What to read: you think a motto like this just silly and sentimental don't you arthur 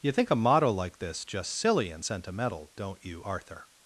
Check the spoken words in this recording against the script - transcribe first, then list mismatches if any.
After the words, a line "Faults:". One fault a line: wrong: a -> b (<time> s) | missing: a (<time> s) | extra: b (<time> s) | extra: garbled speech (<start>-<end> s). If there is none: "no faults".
you think a motto like this just silly and sentimental don't you arthur
Faults:
no faults